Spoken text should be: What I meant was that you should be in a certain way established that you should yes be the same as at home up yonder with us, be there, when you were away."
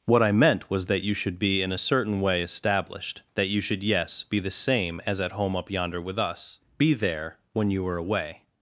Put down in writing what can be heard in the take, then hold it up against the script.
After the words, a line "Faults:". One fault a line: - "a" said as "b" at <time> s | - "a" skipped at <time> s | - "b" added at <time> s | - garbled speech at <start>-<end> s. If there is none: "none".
What I meant was that you should be in a certain way established that you should yes be the same as at home up yonder with us, be there, when you were away."
Faults:
none